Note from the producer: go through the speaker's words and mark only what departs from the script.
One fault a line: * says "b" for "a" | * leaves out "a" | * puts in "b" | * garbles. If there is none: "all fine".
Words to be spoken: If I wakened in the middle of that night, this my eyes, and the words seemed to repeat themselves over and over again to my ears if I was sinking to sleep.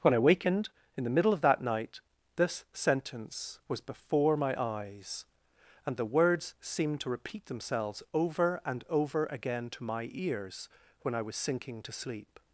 * says "When" for "If"
* puts in "sentence was before"
* says "when" for "if"